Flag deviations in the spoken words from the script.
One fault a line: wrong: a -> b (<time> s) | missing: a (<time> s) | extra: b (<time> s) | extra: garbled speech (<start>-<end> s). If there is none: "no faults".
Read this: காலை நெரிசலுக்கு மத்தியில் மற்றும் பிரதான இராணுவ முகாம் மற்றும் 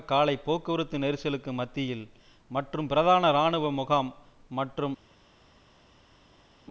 extra: போக்குவரத்து (0.4 s)